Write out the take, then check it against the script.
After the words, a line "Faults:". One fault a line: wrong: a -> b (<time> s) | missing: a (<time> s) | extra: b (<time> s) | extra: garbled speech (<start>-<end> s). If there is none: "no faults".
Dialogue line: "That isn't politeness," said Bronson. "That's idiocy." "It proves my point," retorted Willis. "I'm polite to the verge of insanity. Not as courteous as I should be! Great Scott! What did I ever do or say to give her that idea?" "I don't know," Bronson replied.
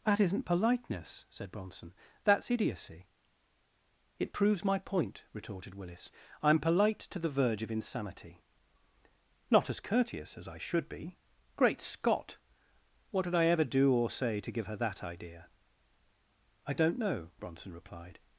"That isn't politeness," said Bronson. "That's idiocy." "It proves my point," retorted Willis. "I'm polite to the verge of insanity. Not as courteous as I should be! Great Scott! What did I ever do or say to give her that idea?" "I don't know," Bronson replied.
Faults:
no faults